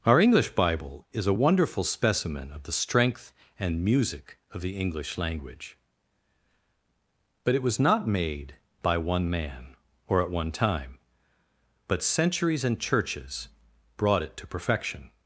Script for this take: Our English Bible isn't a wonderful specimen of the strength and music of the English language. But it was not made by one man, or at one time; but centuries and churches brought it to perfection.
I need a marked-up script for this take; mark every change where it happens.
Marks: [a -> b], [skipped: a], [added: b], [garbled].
Our English Bible [isn't -> is] a wonderful specimen of the strength and music of the English language. But it was not made by one man, or at one time; but centuries and churches brought it to perfection.